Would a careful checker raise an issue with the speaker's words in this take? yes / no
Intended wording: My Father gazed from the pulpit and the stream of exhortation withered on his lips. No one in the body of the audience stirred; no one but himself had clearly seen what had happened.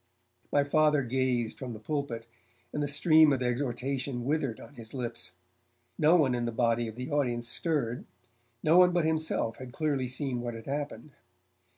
no